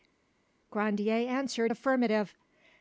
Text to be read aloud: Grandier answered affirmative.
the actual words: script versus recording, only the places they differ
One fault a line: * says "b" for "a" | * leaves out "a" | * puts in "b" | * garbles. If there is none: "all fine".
all fine